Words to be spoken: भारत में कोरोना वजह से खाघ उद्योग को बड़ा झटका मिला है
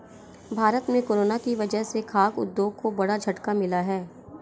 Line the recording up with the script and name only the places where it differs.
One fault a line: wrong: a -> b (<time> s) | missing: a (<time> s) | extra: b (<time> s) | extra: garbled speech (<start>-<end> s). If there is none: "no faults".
extra: की (1.4 s)